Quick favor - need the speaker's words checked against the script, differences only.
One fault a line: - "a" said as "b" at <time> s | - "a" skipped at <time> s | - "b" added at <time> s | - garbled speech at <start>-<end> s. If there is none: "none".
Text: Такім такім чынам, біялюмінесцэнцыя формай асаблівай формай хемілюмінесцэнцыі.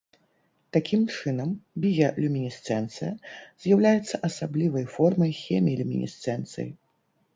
- "такім" skipped at 1.0 s
- "формай" said as "з'яўляецца" at 3.6 s